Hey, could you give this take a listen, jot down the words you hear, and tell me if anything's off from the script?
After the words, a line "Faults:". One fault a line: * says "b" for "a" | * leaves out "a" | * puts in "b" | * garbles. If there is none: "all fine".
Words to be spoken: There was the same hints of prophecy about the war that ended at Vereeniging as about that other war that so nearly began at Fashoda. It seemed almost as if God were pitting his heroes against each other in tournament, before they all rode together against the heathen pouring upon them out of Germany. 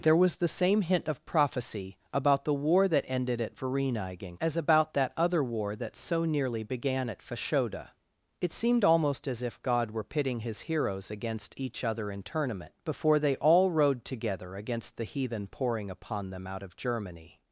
There was the same hint of prophecy about the war that ended at Vereeniging as about that other war that so nearly began at Fashoda. It seemed almost as if God were pitting his heroes against each other in tournament, before they all rode together against the heathen pouring upon them out of Germany.
Faults:
* says "hint" for "hints"